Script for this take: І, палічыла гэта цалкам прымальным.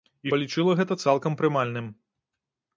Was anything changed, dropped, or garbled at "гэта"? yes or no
no